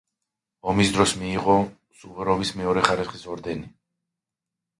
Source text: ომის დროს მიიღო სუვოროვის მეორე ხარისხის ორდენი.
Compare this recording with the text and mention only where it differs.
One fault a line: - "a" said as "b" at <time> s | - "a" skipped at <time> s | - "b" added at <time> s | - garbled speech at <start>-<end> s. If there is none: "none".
none